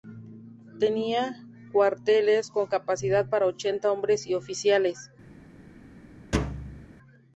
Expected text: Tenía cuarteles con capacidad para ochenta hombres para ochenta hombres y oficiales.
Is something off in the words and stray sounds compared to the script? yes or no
yes